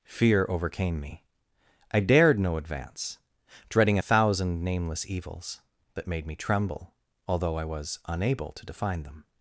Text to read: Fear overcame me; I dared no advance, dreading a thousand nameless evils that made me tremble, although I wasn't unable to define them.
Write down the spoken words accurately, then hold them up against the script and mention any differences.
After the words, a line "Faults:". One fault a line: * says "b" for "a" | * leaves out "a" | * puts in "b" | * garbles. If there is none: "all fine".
Fear overcame me; I dared no advance, dreading a thousand nameless evils that made me tremble, although I was unable to define them.
Faults:
* says "was" for "wasn't"